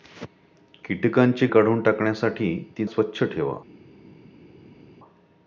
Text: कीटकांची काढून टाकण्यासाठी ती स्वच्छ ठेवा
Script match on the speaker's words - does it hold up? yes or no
yes